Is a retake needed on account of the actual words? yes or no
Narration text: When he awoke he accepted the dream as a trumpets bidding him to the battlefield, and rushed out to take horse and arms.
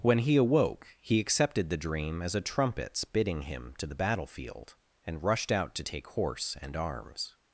no